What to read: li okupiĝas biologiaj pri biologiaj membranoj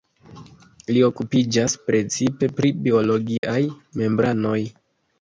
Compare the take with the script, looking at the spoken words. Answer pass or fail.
fail